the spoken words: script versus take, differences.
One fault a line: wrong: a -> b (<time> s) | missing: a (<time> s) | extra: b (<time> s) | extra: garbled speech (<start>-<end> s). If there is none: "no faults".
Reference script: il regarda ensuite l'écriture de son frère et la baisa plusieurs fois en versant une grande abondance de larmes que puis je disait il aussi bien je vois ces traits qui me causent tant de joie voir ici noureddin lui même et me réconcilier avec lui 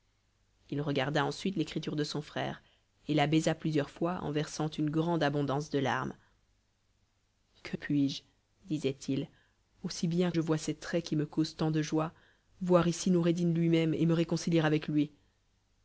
no faults